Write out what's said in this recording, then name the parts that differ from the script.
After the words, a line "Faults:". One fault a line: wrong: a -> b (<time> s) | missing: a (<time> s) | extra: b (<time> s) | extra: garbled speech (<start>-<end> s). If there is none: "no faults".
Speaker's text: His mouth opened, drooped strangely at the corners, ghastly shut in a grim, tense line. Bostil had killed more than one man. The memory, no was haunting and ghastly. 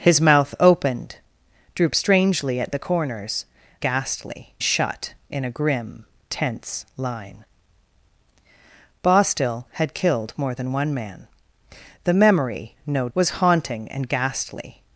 His mouth opened, drooped strangely at the corners, ghastly shut in a grim, tense line. Bostil had killed more than one man. The memory, no was haunting and ghastly.
Faults:
no faults